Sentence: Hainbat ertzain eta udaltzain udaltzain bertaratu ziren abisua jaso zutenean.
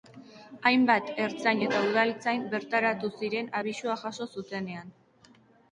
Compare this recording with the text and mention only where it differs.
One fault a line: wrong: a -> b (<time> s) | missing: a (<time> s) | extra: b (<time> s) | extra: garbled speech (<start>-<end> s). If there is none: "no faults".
missing: udaltzain (2.5 s)